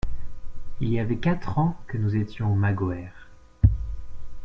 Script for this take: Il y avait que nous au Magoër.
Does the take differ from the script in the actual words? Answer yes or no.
yes